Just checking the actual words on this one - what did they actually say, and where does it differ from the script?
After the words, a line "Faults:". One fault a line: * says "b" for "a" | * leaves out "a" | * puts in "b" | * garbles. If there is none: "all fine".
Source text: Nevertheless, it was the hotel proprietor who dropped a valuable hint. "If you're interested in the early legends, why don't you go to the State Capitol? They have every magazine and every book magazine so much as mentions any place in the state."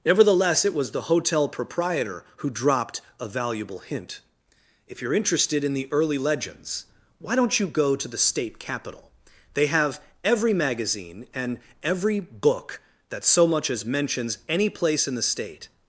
Nevertheless, it was the hotel proprietor who dropped a valuable hint. "If you're interested in the early legends, why don't you go to the State Capitol? They have every magazine and every book that so much as mentions any place in the state."
Faults:
* says "that" for "magazine"